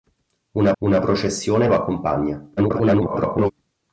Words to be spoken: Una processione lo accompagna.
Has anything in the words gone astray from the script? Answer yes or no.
yes